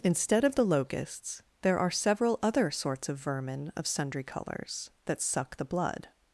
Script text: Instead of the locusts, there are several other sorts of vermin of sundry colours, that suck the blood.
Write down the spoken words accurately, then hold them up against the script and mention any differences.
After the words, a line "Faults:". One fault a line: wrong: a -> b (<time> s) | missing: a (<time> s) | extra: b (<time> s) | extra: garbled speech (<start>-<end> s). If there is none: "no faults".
Instead of the locusts, there are several other sorts of vermin of sundry colours, that suck the blood.
Faults:
no faults